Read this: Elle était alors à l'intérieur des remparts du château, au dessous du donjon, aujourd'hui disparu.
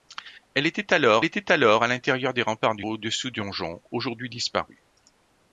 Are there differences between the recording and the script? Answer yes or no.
yes